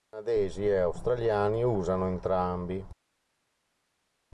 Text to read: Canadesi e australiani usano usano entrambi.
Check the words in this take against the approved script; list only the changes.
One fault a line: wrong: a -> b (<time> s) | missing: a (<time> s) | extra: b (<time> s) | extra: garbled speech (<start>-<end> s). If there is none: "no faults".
missing: usano (2.1 s)